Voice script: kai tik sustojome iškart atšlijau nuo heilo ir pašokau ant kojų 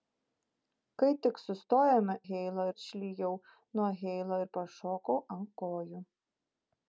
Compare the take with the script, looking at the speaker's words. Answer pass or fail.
fail